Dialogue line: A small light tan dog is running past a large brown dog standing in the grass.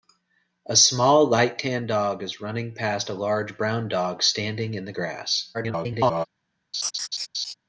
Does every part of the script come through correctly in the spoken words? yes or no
no